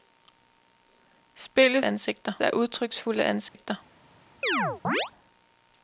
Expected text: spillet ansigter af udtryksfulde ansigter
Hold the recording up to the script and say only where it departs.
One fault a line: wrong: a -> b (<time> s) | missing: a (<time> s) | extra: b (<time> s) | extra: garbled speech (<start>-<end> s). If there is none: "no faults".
no faults